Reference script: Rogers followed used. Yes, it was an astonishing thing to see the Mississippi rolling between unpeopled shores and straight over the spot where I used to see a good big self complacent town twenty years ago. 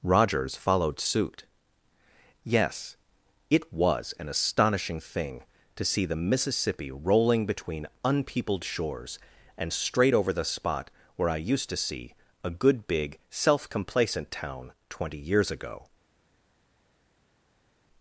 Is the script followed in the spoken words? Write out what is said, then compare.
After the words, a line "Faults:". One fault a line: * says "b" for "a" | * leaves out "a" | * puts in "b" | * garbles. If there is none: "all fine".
Rogers followed suit. Yes, it was an astonishing thing to see the Mississippi rolling between unpeopled shores and straight over the spot where I used to see a good big self complacent town twenty years ago.
Faults:
* says "suit" for "used"